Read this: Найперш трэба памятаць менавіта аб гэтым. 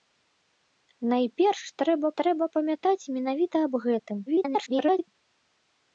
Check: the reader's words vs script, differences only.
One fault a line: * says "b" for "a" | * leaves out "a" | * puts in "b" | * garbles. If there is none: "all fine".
* puts in "трэба"
* garbles